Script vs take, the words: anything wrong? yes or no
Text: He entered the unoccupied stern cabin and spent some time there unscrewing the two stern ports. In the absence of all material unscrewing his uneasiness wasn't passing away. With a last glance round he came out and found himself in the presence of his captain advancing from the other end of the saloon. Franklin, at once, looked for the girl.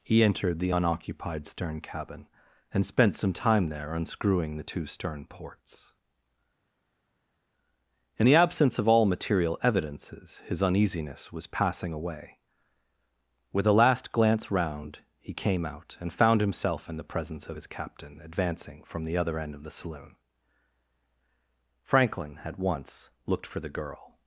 yes